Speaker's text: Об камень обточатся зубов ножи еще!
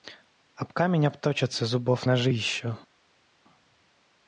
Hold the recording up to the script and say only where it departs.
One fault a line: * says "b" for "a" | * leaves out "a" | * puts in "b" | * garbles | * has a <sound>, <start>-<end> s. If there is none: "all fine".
all fine